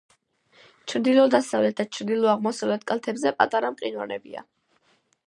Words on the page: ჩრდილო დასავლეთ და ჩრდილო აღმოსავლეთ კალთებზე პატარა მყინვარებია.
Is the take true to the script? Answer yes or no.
yes